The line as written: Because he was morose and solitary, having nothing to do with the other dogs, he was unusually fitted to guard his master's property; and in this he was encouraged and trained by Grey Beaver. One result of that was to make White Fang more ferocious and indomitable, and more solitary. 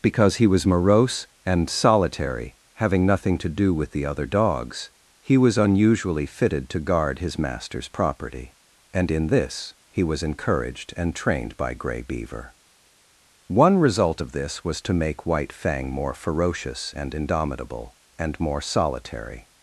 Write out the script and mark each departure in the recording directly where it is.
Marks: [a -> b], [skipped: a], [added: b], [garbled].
Because he was morose and solitary, having nothing to do with the other dogs, he was unusually fitted to guard his master's property; and in this he was encouraged and trained by Grey Beaver. One result of [that -> this] was to make White Fang more ferocious and indomitable, and more solitary.